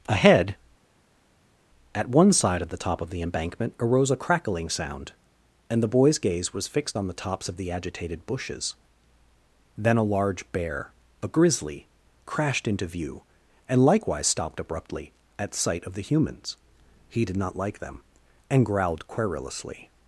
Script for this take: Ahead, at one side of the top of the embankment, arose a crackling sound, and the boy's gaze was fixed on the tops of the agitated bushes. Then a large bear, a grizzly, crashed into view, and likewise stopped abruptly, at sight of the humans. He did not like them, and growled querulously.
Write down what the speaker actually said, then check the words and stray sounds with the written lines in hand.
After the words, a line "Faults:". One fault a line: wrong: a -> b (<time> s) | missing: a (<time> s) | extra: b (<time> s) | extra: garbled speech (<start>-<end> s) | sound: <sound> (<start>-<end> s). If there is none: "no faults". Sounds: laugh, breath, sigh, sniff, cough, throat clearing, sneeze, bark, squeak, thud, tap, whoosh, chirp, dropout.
Ahead, at one side of the top of the embankment, arose a crackling sound, and the boy's gaze was fixed on the tops of the agitated bushes. Then a large bear, a grizzly, crashed into view, and likewise stopped abruptly, at sight of the humans. He did not like them, and growled querulously.
Faults:
no faults